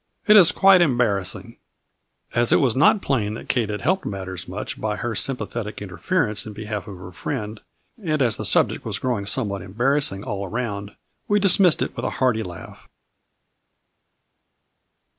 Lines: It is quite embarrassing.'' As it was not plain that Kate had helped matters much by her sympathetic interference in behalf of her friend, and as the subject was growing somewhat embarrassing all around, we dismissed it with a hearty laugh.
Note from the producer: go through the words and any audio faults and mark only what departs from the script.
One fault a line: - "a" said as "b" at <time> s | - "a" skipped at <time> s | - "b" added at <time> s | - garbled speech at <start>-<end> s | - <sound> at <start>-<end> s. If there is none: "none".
none